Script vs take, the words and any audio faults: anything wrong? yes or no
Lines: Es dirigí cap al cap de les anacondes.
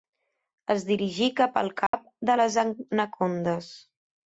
yes